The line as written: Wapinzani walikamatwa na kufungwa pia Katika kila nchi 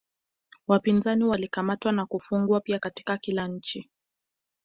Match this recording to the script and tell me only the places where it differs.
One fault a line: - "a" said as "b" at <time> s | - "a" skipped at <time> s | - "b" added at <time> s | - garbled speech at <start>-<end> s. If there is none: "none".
none